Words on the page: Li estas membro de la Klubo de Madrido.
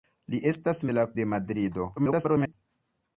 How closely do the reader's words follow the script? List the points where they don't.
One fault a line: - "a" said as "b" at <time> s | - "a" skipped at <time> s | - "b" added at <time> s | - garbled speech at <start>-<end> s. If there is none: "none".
- "membro" skipped at 0.8 s
- "Klubo" skipped at 1.1 s
- garbled speech at 2.0-2.5 s